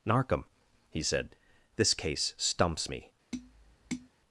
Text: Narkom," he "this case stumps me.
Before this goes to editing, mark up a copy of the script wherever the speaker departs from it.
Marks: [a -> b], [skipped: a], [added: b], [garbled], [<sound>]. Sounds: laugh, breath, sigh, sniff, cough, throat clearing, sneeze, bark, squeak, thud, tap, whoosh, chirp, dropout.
Narkom," he [added: said] "this case stumps me. [tap]